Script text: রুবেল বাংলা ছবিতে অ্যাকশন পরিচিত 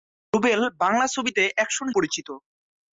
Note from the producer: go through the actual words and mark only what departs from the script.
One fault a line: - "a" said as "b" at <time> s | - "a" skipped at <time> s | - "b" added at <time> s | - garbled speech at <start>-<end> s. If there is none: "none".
none